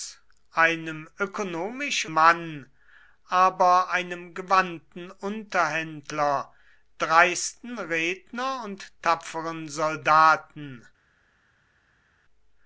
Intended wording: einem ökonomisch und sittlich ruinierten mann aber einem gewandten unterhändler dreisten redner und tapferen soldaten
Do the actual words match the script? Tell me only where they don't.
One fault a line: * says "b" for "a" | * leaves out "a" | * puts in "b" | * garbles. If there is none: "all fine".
* leaves out "und sittlich ruinierten"